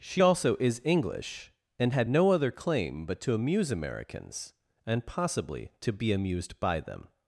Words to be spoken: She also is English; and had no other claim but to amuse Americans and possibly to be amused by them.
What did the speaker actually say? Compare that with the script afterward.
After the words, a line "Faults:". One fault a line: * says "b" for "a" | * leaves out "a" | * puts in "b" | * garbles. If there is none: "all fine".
She also is English; and had no other claim but to amuse Americans and possibly to be amused by them.
Faults:
all fine